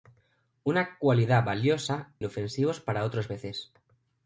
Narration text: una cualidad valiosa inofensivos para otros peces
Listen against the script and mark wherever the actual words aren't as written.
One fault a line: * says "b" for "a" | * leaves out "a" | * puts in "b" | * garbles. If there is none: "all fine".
all fine